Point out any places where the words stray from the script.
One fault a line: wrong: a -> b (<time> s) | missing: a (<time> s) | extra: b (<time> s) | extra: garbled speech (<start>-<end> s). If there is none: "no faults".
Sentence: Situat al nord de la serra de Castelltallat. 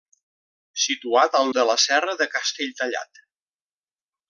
missing: nord (1.5 s)